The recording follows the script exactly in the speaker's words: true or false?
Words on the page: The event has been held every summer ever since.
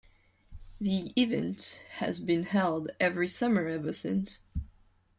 true